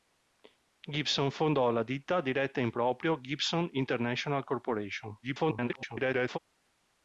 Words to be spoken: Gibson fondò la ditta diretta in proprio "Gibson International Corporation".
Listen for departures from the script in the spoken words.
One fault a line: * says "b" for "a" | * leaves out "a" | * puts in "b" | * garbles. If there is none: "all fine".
* garbles